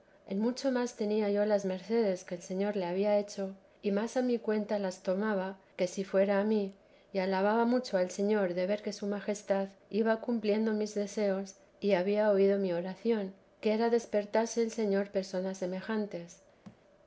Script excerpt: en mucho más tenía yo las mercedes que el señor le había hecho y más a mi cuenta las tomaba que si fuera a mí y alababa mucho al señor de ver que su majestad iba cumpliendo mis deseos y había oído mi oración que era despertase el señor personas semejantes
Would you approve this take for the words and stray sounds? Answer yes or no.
no